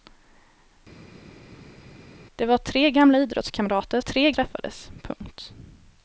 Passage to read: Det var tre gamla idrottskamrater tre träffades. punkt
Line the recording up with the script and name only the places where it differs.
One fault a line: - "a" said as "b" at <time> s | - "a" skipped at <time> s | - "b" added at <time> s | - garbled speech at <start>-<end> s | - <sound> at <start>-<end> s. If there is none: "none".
none